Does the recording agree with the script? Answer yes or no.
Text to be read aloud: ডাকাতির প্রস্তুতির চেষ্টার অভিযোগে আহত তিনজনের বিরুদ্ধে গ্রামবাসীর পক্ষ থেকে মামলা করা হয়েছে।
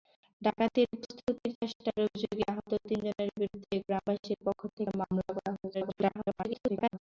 no